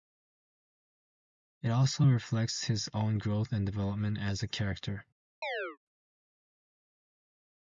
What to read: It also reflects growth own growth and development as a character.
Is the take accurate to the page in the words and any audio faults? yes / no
no